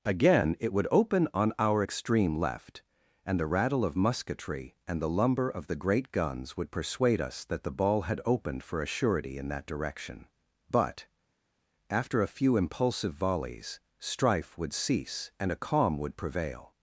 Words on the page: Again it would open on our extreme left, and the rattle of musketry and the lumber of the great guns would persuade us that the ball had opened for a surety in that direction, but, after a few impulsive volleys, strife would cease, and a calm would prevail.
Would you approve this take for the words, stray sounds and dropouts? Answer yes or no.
yes